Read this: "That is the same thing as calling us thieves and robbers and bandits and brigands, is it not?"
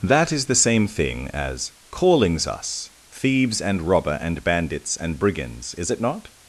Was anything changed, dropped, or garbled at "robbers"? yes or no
yes